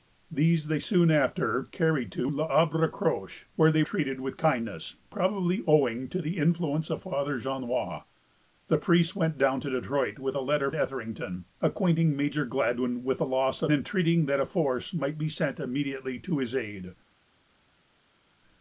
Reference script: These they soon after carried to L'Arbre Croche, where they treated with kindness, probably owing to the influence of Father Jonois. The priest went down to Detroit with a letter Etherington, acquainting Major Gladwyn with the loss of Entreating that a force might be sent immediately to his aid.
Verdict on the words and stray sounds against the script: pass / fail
pass